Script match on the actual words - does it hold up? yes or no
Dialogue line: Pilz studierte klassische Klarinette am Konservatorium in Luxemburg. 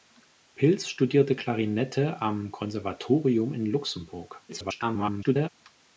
no